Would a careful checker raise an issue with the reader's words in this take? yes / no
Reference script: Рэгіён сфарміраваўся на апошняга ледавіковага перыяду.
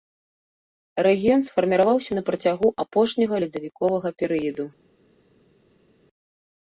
yes